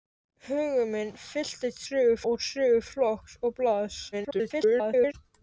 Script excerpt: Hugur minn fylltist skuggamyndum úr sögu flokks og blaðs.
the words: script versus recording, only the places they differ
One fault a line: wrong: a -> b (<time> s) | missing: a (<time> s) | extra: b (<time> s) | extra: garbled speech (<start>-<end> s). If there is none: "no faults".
wrong: skuggamyndum -> sögu (1.9 s)
extra: garbled speech (4.1-5.1 s)